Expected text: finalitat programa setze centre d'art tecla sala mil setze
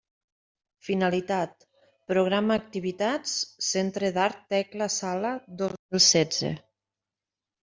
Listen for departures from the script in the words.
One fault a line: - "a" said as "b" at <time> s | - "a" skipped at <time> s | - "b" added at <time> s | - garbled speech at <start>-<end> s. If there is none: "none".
- "setze" said as "activitats" at 2.6 s
- "dos" added at 5.6 s